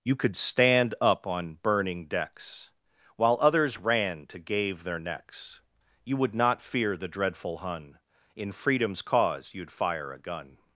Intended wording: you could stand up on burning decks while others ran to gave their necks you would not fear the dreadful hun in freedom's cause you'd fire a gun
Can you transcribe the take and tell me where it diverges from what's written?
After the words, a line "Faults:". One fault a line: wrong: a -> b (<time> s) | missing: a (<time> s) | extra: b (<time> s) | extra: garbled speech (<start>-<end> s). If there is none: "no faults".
you could stand up on burning decks while others ran to gave their necks you would not fear the dreadful hun in freedom's cause you'd fire a gun
Faults:
no faults